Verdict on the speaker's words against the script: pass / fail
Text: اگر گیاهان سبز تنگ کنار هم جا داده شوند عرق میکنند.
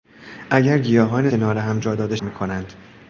fail